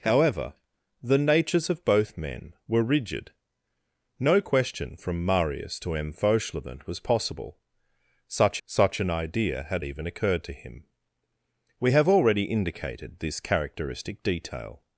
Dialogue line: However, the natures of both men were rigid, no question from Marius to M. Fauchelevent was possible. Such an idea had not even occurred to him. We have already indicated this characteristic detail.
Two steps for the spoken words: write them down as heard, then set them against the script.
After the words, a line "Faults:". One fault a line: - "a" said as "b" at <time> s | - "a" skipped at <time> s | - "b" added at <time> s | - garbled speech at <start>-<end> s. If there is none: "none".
However, the natures of both men were rigid, no question from Marius to M. Fauchelevent was possible. Such such an idea had even occurred to him. We have already indicated this characteristic detail.
Faults:
- "such" added at 8.6 s
- "not" skipped at 9.9 s